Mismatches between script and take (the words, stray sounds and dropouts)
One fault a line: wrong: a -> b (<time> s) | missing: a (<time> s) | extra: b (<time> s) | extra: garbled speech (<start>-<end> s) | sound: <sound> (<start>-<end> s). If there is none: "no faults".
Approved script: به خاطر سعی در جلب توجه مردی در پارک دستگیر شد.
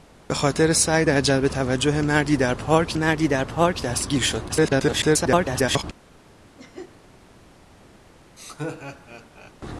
extra: مردی در پارک (2.9 s)
extra: garbled speech (4.5-5.8 s)
sound: laugh (6.6-7.0 s)
sound: laugh (8.4-9.5 s)